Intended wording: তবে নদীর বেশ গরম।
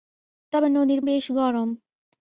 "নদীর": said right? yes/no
yes